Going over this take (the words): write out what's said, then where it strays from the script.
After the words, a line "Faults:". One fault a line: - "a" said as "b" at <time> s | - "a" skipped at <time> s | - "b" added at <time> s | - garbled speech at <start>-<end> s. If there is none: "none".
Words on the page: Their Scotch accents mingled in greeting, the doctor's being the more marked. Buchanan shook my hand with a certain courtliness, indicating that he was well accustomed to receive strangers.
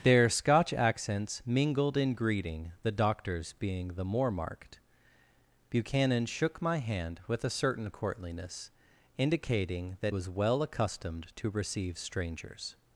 Their Scotch accents mingled in greeting, the doctor's being the more marked. Buchanan shook my hand with a certain courtliness, indicating that was well accustomed to receive strangers.
Faults:
- "he" skipped at 10.2 s